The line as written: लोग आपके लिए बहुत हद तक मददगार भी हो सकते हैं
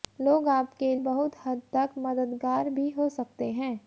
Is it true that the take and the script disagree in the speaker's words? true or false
true